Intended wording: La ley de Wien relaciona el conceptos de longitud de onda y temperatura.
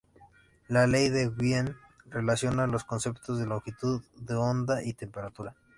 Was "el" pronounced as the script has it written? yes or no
no